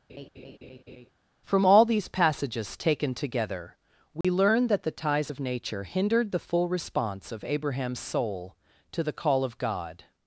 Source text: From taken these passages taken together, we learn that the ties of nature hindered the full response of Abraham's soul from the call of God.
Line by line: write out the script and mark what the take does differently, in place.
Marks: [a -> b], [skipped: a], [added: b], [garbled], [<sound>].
[laugh] From [taken -> all] these passages taken together, we [dropout] learn that the ties of nature hindered the full response of Abraham's soul [from -> to] the call of God.